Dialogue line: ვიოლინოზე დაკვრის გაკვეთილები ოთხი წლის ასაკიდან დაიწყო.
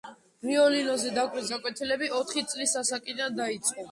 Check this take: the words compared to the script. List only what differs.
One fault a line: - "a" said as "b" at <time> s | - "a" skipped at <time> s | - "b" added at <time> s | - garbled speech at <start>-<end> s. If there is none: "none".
none